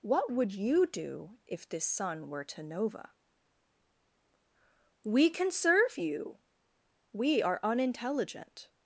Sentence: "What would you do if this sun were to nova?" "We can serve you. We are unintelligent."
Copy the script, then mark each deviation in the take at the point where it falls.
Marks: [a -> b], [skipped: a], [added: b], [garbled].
"What would you do if this sun were to nova?" "We can serve you. We are unintelligent."